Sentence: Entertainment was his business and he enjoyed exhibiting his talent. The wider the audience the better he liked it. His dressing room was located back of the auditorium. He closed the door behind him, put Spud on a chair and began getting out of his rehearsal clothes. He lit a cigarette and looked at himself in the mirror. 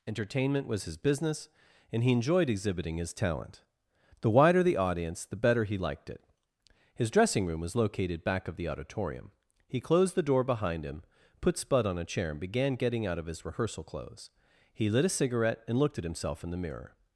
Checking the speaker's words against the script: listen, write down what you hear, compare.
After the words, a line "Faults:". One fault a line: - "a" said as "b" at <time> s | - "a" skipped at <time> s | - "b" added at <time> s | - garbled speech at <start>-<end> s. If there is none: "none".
Entertainment was his business and he enjoyed exhibiting his talent. The wider the audience the better he liked it. His dressing room was located back of the auditorium. He closed the door behind him, put Spud on a chair and began getting out of his rehearsal clothes. He lit a cigarette and looked at himself in the mirror.
Faults:
none